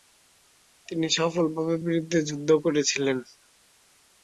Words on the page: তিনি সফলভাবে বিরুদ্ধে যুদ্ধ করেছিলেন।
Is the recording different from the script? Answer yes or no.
no